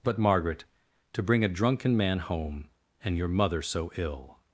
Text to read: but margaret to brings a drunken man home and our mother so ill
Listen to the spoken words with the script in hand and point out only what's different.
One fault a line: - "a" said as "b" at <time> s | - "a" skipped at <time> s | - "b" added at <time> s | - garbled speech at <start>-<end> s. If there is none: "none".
- "brings" said as "bring" at 1.2 s
- "our" said as "your" at 3.2 s